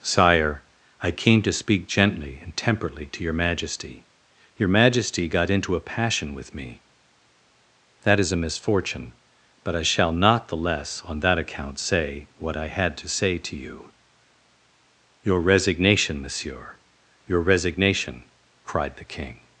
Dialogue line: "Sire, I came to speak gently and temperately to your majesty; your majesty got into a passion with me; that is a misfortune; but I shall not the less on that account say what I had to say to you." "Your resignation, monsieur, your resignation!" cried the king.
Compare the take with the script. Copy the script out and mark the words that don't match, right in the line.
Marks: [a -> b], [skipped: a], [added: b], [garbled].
"Sire, I came to speak gently and temperately to your majesty; your majesty got into a passion with me; that is a misfortune; but I shall not the less on that account say what I had to say to you." "Your resignation, monsieur, your resignation!" cried the king.